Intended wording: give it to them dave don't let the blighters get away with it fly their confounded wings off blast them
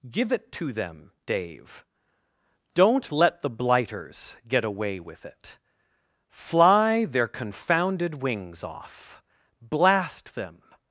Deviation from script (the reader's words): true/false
false